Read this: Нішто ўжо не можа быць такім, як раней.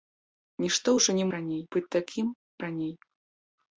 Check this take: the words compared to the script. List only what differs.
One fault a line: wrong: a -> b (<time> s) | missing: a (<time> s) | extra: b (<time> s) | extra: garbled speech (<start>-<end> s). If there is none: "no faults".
wrong: можа -> раней (1.3 s)
missing: як (2.3 s)